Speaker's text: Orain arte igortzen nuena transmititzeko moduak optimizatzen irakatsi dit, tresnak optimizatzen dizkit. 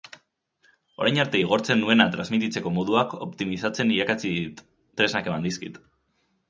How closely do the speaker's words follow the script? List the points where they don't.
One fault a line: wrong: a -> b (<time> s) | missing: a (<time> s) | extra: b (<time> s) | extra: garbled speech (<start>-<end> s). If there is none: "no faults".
wrong: optimizatzen -> eman (5.3 s)